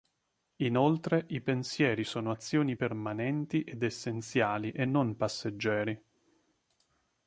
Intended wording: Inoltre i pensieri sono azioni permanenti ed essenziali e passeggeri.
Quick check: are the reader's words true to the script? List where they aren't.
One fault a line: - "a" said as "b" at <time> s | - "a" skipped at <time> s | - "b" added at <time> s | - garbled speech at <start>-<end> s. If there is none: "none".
- "non" added at 4.8 s